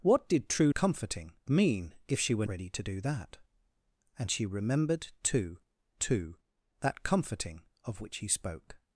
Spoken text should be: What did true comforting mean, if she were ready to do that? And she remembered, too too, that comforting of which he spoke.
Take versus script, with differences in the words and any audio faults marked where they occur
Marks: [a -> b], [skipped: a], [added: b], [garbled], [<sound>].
What did true comforting mean, if she were ready to do that? And she remembered, too too, that comforting of which he spoke.